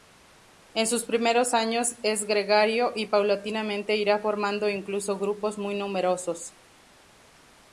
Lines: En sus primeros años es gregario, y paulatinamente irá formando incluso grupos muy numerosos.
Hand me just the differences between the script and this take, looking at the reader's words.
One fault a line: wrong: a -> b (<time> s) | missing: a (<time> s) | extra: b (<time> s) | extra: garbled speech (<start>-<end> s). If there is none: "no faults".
no faults